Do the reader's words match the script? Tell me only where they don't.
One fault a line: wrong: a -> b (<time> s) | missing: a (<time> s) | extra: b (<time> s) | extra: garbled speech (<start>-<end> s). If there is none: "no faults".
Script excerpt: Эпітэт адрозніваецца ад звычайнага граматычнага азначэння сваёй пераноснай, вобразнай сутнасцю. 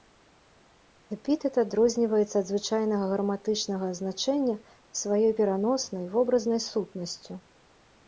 no faults